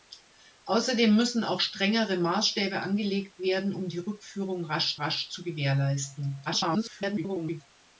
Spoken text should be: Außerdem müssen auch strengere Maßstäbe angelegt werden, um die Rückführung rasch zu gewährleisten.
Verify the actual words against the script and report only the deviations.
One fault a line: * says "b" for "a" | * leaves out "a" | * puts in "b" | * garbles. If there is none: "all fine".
* puts in "rasch"
* garbles